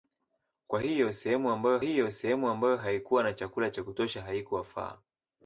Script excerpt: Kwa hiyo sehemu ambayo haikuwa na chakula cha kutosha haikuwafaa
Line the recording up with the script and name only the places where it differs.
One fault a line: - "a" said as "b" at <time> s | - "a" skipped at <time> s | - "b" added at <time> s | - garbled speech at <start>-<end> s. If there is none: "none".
- "hiyo sehemu ambayo" added at 1.8 s